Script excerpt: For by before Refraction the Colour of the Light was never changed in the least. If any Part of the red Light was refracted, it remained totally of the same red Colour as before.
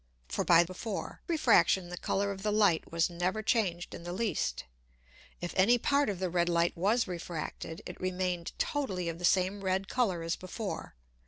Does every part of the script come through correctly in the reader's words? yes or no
yes